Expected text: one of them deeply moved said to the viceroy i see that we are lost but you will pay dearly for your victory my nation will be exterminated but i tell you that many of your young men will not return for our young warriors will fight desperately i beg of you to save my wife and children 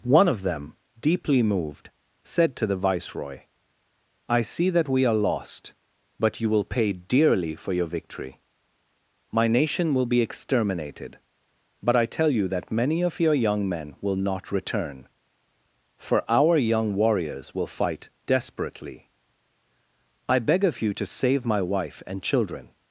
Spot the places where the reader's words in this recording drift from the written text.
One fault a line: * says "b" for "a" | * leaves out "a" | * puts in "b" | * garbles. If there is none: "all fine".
all fine